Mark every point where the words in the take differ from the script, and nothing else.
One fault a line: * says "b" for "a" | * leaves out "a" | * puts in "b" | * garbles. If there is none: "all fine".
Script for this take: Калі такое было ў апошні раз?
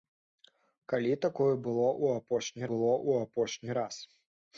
* puts in "было ў апошні"